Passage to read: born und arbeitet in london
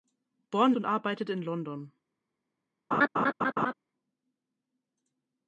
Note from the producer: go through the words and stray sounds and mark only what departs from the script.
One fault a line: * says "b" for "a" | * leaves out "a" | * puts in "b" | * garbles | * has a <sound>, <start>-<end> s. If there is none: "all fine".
* has a laugh, 2.9-3.7 s